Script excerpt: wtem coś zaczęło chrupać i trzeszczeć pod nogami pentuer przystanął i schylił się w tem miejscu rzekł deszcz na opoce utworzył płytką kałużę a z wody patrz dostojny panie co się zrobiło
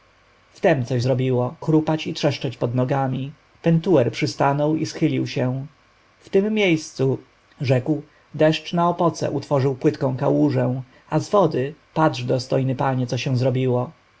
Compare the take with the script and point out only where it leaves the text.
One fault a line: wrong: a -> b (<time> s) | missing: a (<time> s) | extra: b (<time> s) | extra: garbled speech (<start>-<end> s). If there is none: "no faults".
wrong: zaczęło -> zrobiło (1.0 s)